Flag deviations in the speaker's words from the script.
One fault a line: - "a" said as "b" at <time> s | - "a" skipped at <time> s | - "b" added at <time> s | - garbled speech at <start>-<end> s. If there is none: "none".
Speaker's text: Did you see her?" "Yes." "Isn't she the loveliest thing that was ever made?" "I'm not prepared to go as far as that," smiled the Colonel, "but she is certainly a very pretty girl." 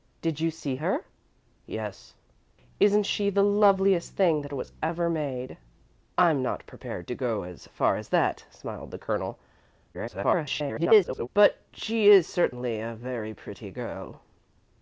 - garbled speech at 9.9-11.3 s